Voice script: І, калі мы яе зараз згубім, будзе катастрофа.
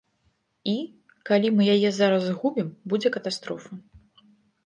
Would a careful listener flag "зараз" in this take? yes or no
no